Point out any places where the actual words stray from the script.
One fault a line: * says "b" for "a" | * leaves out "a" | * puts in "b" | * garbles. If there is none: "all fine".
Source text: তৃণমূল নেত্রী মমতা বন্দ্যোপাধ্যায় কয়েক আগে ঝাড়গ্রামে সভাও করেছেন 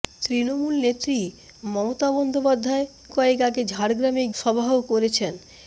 all fine